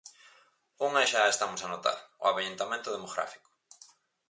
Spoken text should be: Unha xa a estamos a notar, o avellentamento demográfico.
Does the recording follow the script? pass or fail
pass